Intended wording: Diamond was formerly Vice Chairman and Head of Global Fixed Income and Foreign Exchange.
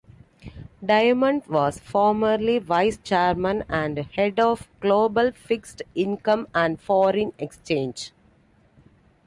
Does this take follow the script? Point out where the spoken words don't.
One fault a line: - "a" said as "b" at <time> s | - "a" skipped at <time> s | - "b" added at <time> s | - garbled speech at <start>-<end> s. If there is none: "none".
none